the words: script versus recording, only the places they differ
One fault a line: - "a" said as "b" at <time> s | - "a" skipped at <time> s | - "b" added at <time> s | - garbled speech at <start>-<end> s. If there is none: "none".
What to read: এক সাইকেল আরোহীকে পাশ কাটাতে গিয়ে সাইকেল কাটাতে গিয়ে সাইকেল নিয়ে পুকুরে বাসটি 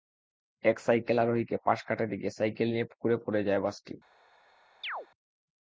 - "কাটাতে গিয়ে সাইকেল নিয়ে পুকুরে" said as "নিয়ে পুকুরে পড়ে যায়" at 2.7 s